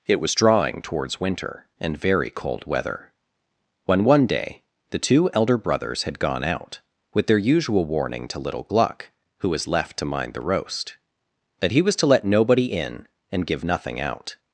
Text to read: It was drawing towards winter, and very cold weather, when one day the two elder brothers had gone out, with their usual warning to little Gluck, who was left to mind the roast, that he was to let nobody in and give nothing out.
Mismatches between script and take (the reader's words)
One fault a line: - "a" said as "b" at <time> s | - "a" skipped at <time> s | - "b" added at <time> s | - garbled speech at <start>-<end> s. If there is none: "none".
none